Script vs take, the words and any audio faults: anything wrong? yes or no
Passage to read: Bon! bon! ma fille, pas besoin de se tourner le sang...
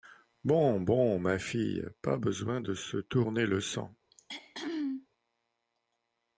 yes